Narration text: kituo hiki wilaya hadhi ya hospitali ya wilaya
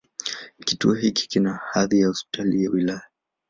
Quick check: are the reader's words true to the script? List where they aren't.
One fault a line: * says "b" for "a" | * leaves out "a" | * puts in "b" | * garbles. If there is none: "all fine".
* says "kina" for "wilaya"